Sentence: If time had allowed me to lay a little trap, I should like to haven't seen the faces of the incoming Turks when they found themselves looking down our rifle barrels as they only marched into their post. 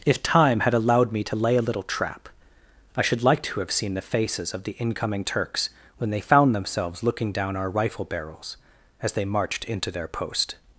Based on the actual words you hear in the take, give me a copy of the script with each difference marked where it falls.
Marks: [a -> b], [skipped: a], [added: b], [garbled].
If time had allowed me to lay a little trap, I should like to [haven't -> have] seen the faces of the incoming Turks when they found themselves looking down our rifle barrels as they [skipped: only] marched into their post.